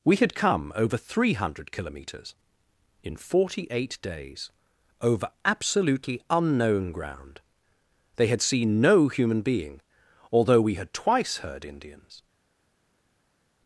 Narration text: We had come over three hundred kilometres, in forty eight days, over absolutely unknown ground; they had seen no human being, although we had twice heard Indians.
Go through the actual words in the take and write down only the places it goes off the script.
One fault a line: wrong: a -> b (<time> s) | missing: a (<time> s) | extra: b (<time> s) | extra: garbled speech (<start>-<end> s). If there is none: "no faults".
no faults